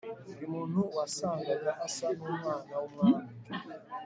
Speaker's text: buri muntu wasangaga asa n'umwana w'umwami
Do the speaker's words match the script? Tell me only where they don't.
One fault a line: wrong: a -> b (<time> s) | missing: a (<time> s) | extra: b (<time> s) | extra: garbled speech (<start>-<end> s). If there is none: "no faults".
no faults